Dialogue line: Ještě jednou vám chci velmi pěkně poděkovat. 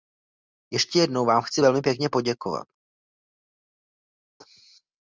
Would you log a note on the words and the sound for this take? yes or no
no